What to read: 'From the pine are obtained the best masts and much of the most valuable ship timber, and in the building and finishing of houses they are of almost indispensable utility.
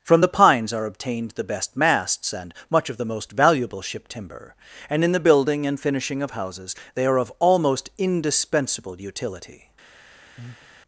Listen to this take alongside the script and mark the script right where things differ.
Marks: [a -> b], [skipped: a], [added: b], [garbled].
'From the [pine -> pines] are obtained the best masts and much of the most valuable ship timber, and in the building and finishing of houses they are of almost indispensable utility.